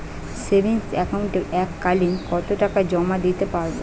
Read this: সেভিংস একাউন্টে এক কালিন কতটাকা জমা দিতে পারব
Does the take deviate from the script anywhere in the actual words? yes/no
no